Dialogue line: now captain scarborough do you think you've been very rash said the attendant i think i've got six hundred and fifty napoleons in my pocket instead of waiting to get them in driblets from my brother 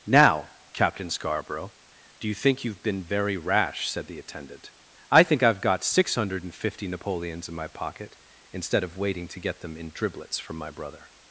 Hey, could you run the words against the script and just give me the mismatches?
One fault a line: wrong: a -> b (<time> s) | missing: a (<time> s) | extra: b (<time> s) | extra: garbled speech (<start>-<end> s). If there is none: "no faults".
no faults